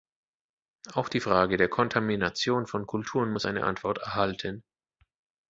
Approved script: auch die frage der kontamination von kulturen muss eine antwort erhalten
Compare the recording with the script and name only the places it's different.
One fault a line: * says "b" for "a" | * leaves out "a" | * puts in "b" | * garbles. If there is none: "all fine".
all fine